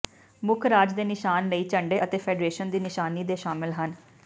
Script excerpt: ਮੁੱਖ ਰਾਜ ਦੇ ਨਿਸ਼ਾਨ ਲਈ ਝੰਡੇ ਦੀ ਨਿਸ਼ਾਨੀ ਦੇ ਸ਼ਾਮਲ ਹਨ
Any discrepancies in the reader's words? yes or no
yes